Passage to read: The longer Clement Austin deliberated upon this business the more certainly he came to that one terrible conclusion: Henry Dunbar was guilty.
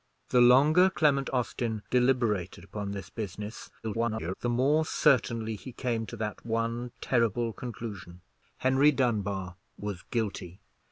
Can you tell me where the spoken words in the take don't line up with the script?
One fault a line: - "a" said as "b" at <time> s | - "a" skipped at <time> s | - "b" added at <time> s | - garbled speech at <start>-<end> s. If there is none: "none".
- garbled speech at 3.8-4.3 s